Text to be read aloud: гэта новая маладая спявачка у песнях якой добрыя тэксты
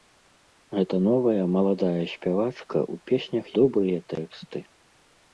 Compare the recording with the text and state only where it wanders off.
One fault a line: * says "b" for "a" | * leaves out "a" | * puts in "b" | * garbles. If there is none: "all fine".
* leaves out "якой"